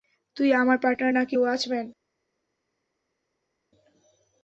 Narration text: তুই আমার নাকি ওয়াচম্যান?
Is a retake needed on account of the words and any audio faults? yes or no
yes